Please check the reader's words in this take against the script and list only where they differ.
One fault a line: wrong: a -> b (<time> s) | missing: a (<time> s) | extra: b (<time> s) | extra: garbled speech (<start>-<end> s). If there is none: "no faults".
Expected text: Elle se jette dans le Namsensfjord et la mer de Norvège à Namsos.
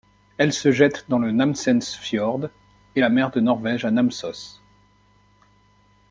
no faults